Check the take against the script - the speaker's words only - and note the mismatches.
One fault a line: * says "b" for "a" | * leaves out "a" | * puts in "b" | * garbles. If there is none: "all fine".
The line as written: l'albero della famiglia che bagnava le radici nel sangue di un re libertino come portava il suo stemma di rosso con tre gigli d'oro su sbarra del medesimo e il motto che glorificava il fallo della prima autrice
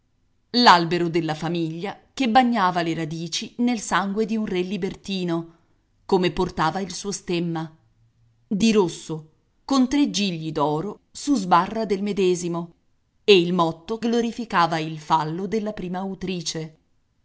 * leaves out "che"